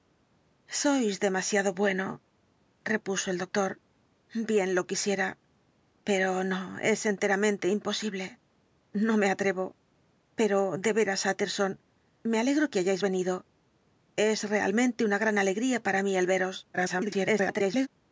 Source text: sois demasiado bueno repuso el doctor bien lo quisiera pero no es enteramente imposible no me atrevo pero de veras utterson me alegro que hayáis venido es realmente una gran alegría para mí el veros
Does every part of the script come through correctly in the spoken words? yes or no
no